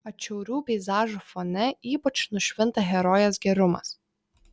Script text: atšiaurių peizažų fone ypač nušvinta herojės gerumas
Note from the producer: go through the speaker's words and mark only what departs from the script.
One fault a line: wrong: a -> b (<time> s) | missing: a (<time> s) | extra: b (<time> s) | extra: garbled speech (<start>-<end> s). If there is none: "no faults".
no faults